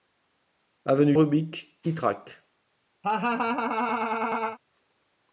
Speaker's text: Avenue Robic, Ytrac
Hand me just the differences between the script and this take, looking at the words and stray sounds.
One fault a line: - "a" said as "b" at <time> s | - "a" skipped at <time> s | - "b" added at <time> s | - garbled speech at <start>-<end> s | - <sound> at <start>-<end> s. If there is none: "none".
- laugh at 3.0-4.6 s